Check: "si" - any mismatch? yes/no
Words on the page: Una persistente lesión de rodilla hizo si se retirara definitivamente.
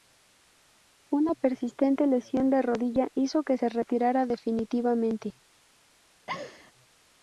yes